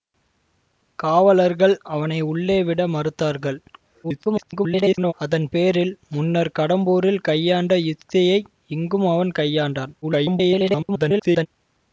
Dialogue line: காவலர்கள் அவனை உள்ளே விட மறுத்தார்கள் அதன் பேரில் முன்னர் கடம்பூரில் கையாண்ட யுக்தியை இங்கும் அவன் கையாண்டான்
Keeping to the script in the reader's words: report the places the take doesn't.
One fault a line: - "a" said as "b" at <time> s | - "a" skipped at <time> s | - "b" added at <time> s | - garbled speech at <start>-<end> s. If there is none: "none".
- garbled speech at 4.0-5.1 s
- garbled speech at 10.0-11.5 s